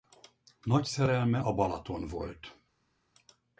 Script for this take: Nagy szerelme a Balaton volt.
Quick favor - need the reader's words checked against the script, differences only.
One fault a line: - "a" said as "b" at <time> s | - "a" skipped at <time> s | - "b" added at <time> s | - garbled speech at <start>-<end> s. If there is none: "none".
none